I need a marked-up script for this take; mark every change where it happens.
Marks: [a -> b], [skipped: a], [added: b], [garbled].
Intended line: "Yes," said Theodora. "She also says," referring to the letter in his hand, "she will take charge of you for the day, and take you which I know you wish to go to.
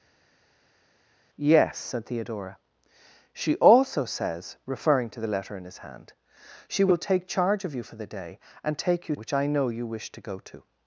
"Yes," said Theodora. "She also says," referring to the letter in his hand, "she will take charge of you for the day, and take you which I know you wish to go to.